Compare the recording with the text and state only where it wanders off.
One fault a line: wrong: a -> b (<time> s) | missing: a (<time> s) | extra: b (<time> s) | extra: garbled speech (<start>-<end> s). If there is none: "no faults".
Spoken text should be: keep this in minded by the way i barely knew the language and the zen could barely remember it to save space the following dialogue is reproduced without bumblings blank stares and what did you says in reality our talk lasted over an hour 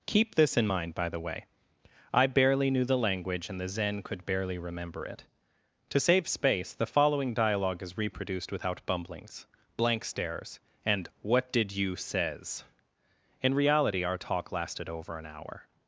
wrong: minded -> mind (0.6 s)